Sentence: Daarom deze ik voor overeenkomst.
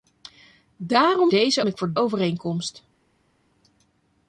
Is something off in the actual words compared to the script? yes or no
no